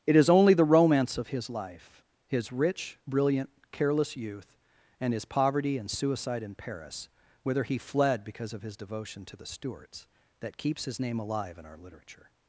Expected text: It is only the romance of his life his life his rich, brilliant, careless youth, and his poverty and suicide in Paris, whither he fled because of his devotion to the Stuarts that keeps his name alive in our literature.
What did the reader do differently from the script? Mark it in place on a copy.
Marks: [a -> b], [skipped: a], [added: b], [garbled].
It is only the romance of his life his [skipped: life his] rich, brilliant, careless youth, and his poverty and suicide in Paris, whither he fled because of his devotion to the Stuarts that keeps his name alive in our literature.